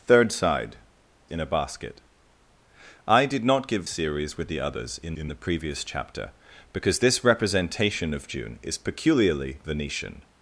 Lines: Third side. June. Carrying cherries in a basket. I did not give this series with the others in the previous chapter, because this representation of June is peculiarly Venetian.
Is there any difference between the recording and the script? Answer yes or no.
yes